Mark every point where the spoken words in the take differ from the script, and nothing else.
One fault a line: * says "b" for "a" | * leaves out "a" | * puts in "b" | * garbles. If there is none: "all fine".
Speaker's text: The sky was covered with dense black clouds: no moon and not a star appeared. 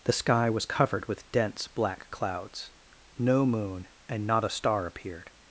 all fine